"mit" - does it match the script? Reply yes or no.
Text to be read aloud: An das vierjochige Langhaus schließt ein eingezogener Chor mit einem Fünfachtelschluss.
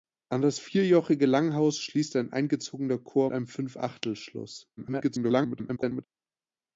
no